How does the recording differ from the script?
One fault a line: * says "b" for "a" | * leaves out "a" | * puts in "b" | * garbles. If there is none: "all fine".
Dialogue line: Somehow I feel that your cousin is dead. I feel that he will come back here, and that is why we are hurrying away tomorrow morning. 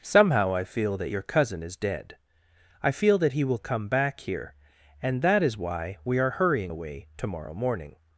all fine